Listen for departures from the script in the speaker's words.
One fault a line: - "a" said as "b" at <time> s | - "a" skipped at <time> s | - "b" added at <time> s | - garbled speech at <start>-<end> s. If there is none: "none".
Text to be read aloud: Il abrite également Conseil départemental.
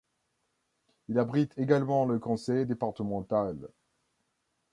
- "le" added at 2.0 s